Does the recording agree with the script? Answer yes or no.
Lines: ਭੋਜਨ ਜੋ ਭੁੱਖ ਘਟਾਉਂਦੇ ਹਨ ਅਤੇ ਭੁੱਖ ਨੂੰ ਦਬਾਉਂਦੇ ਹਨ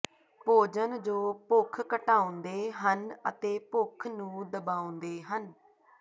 yes